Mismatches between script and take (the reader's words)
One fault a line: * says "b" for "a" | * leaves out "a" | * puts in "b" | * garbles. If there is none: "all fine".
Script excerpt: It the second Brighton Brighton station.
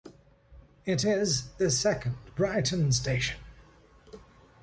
* puts in "is"
* leaves out "Brighton"